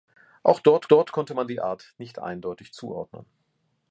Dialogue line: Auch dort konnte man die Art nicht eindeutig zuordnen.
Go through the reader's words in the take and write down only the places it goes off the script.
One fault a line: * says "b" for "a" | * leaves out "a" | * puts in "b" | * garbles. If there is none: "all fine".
* puts in "dort"